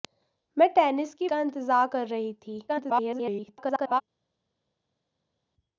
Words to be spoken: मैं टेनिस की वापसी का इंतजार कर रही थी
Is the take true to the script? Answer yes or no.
no